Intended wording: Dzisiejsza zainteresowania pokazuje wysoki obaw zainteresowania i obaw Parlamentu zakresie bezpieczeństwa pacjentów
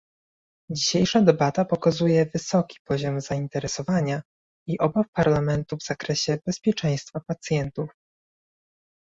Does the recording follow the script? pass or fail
fail